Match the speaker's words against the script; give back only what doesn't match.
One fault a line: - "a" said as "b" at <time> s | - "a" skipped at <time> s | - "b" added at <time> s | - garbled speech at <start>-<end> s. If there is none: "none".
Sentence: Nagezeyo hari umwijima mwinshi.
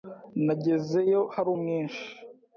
- "umwijima" skipped at 1.5 s